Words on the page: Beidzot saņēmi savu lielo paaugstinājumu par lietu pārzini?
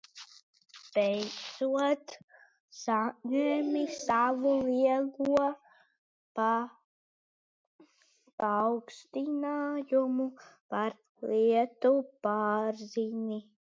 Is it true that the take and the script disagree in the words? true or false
false